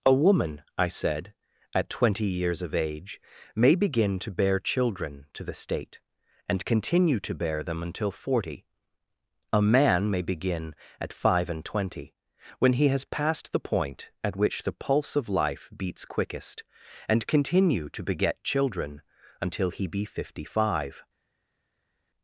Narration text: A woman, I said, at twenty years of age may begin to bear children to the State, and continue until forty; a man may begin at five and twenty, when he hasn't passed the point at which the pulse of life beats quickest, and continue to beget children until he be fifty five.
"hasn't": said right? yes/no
no